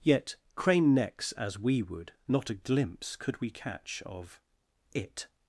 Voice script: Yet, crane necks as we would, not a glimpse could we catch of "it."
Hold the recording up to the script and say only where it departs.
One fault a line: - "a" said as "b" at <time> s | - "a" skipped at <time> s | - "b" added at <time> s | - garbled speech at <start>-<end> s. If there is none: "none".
none